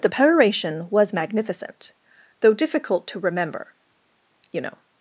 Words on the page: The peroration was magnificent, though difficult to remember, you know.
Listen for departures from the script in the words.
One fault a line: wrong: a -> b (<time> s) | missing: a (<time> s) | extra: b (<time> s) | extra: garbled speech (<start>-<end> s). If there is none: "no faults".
no faults